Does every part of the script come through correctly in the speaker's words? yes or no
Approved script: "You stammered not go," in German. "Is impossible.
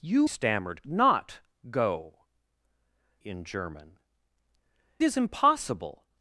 yes